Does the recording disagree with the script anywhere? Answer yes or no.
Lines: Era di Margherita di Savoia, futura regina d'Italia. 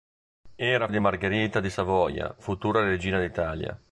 no